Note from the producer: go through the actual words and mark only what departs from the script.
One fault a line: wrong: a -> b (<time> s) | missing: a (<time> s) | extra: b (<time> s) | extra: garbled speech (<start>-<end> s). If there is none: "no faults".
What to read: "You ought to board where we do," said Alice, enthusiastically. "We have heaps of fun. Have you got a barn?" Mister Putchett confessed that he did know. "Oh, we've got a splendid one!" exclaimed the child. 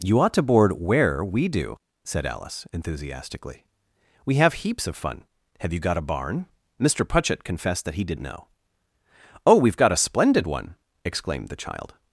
no faults